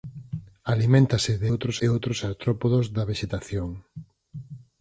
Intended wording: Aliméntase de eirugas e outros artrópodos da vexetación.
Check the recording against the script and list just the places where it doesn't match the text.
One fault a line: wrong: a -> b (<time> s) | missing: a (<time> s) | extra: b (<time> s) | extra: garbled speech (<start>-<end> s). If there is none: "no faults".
wrong: eirugas -> outros (1.5 s)